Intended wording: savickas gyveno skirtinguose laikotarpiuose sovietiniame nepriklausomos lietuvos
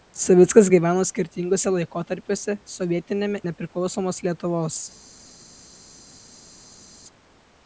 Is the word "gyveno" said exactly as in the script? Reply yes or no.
yes